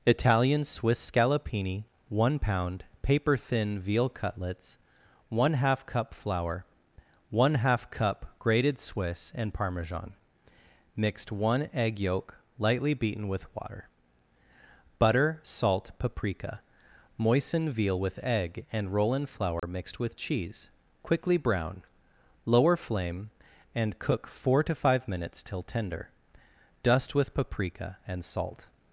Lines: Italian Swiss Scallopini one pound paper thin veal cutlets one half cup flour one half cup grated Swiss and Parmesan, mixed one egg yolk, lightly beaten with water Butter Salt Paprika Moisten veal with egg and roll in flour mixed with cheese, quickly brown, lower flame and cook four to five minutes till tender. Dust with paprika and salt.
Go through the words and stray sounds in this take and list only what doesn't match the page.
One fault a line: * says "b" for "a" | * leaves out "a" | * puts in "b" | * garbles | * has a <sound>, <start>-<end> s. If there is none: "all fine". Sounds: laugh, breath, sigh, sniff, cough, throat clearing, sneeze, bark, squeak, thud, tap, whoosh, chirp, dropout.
* has a dropout, 19.6-19.6 s